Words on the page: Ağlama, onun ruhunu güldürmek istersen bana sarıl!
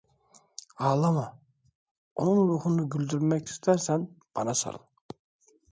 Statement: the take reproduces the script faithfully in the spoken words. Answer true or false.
true